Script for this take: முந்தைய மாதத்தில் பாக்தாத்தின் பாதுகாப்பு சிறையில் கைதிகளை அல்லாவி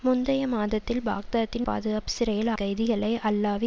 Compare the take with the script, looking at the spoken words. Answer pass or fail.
pass